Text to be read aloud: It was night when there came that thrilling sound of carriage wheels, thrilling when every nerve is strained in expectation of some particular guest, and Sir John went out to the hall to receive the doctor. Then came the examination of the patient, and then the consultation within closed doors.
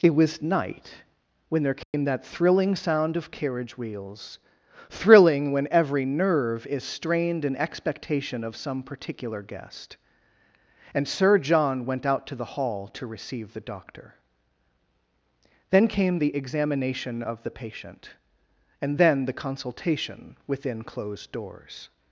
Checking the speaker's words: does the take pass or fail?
pass